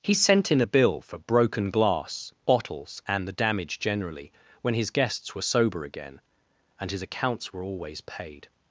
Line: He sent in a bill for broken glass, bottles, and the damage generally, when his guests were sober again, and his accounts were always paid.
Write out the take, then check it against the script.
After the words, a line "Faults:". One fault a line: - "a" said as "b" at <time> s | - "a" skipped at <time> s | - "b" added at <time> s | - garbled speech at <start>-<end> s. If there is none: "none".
He sent in a bill for broken glass, bottles, and the damage generally, when his guests were sober again, and his accounts were always paid.
Faults:
none